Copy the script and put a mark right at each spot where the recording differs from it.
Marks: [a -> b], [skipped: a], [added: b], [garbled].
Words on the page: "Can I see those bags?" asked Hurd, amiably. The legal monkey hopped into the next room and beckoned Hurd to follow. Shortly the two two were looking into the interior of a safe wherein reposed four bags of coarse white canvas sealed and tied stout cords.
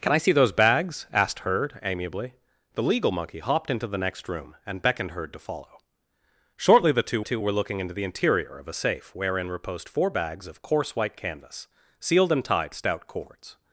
"Can I see those bags?" asked Hurd, amiably. The legal monkey hopped into the next room and beckoned Hurd to follow. Shortly the two two were looking into the interior of a safe wherein reposed four bags of coarse white canvas sealed and tied stout cords.